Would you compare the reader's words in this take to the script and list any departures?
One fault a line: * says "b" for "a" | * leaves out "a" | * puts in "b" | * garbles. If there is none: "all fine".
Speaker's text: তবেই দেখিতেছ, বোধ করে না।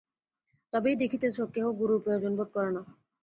* puts in "কেহ গুরুর প্রয়োজন"